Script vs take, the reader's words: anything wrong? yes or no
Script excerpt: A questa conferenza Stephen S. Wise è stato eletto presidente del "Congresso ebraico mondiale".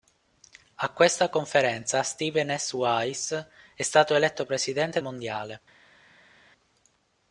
yes